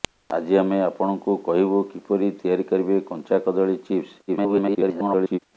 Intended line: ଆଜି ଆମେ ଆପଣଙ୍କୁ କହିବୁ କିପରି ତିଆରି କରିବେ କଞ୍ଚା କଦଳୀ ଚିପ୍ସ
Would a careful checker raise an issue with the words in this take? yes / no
yes